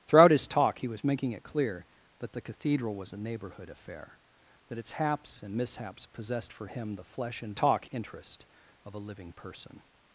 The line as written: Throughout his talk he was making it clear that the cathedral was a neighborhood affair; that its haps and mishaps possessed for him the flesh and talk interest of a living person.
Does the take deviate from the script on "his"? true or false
false